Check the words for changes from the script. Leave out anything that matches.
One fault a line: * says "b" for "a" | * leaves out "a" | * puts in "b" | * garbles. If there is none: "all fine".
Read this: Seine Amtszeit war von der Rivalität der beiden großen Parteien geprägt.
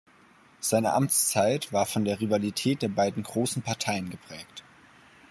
all fine